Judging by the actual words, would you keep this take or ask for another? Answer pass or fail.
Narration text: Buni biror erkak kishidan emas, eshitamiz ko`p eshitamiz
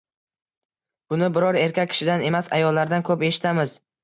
fail